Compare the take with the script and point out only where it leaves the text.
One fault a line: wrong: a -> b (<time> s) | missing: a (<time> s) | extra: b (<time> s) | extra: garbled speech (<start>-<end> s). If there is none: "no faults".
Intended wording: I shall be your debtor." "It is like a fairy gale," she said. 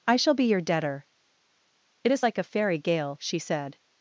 no faults